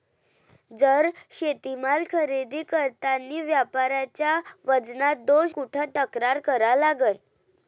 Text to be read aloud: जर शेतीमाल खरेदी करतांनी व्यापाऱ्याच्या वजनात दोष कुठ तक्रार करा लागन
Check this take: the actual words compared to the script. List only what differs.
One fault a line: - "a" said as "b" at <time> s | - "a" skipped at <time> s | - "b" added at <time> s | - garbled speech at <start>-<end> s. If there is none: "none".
none